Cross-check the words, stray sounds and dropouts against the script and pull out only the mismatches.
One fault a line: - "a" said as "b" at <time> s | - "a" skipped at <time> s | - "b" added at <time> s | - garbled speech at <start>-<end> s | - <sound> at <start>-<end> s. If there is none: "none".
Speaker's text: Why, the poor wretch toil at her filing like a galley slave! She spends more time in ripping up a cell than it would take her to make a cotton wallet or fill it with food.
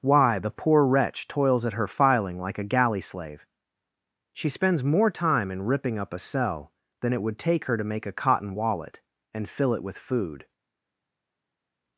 - "toil" said as "toils" at 1.3 s
- "or" said as "and" at 9.3 s